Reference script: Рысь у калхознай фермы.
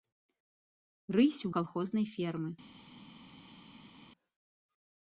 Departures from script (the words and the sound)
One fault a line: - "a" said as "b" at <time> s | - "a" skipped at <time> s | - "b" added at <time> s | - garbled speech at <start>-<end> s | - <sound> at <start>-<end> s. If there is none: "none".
none